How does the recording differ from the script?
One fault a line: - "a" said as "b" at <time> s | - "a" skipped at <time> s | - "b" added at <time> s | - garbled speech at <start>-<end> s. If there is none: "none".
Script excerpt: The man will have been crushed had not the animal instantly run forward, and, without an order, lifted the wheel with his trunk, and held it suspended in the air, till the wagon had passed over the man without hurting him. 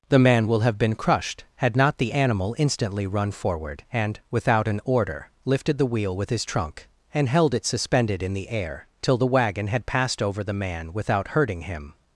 none